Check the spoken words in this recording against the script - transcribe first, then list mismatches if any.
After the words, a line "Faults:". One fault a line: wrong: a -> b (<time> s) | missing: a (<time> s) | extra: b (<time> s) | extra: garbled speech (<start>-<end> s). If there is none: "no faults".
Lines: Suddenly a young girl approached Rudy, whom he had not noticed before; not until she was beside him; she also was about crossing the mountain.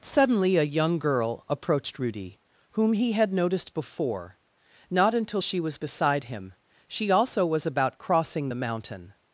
Suddenly a young girl approached Rudy, whom he had noticed before; not until she was beside him; she also was about crossing the mountain.
Faults:
missing: not (3.3 s)